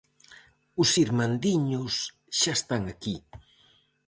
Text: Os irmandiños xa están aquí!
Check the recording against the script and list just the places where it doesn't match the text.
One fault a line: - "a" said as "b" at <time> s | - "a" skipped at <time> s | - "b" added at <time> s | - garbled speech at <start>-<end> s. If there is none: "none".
none